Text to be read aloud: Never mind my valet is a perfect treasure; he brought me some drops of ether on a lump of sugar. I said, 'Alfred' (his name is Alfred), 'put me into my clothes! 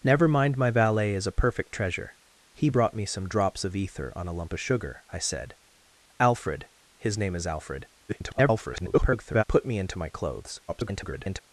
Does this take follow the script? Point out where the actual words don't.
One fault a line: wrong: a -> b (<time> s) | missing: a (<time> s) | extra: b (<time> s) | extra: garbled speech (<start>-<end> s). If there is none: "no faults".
extra: garbled speech (8.1-9.4 s)
extra: garbled speech (10.7-11.4 s)